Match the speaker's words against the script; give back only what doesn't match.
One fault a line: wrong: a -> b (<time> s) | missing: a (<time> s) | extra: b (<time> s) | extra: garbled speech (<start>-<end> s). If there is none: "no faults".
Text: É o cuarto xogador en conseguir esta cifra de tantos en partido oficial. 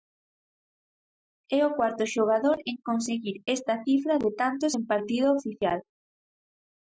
no faults